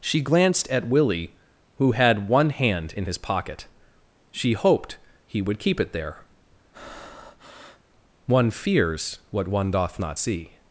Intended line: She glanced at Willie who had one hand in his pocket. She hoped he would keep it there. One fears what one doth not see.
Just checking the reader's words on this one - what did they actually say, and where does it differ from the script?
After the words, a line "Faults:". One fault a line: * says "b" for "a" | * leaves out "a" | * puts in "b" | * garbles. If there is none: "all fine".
She glanced at Willie who had one hand in his pocket. She hoped he would keep it there. One fears what one doth not see.
Faults:
all fine